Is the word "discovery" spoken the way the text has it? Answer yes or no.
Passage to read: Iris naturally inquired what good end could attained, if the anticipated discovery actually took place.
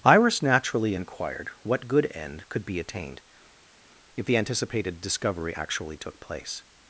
yes